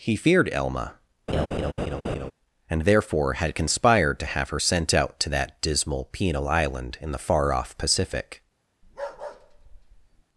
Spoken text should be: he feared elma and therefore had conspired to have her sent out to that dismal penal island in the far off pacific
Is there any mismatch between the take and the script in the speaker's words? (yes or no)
no